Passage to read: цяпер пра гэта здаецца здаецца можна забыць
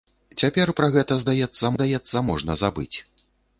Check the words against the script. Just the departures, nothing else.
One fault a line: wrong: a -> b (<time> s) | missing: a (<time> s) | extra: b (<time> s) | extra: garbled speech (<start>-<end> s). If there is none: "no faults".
no faults